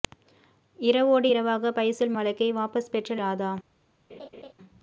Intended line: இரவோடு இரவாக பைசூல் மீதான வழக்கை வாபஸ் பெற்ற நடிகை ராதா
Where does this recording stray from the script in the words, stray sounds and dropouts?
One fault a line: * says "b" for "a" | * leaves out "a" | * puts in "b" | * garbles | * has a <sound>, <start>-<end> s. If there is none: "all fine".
* leaves out "மீதான"
* leaves out "நடிகை"
* has a laugh, 4.1-4.5 s